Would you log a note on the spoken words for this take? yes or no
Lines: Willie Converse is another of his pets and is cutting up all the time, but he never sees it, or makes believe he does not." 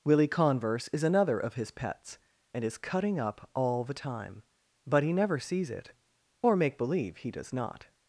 yes